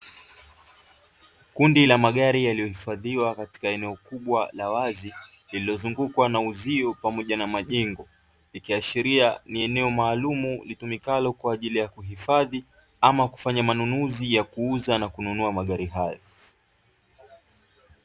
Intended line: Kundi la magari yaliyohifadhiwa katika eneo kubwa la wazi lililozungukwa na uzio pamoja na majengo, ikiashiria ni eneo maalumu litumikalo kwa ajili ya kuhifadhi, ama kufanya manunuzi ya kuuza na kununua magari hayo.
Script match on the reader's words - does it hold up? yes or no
yes